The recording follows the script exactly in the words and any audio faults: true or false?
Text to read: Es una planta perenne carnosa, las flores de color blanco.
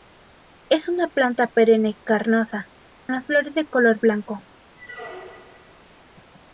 false